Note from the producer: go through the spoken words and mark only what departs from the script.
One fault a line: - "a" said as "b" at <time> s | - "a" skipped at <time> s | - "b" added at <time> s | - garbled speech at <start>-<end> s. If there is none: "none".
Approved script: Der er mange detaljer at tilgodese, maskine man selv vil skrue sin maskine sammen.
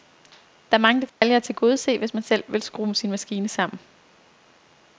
- "maskine" said as "hvis" at 2.0 s